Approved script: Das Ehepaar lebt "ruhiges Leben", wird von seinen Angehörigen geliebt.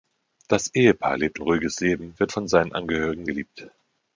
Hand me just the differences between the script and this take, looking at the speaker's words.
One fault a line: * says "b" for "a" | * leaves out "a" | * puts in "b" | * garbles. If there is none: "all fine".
all fine